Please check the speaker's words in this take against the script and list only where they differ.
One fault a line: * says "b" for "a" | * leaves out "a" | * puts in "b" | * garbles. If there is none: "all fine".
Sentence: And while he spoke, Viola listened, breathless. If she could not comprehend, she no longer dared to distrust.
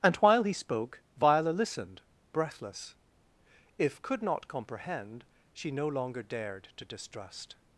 * leaves out "she"